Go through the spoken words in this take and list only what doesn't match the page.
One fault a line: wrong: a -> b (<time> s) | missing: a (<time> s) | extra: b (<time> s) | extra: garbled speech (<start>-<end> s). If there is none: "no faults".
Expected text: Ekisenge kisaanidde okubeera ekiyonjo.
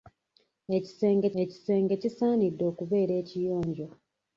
extra: ekisenge (1.4 s)